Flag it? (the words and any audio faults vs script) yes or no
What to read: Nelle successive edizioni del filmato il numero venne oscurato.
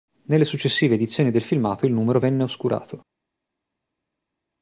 no